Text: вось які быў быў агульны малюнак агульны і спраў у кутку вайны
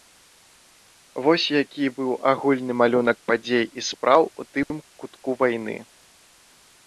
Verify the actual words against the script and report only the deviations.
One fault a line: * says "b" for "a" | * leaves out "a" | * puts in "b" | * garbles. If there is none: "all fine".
* leaves out "быў"
* says "падзей" for "агульны"
* puts in "тым"